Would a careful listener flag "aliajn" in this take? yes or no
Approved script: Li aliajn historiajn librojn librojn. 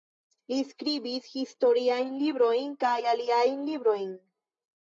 yes